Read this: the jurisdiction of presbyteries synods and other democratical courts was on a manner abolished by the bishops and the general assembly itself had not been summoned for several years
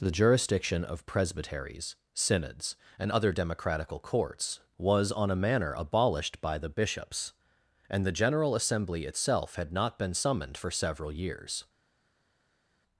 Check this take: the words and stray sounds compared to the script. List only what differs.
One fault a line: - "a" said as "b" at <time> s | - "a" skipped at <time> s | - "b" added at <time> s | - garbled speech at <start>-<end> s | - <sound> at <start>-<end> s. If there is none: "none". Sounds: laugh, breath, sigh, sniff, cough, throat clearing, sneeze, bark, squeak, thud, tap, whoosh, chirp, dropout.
none